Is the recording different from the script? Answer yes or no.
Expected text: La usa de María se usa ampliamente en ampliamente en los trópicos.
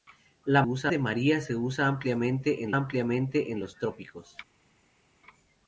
no